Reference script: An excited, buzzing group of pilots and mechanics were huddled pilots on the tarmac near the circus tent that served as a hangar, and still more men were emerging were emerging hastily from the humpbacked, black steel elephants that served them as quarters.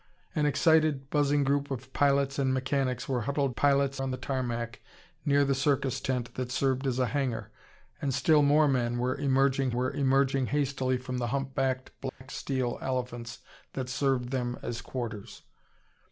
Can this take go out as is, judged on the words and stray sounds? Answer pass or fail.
fail